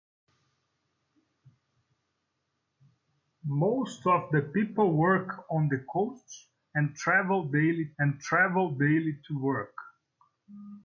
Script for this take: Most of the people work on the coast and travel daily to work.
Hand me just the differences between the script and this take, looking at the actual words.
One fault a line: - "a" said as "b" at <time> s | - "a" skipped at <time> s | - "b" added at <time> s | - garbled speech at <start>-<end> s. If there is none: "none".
- "and travel daily" added at 8.0 s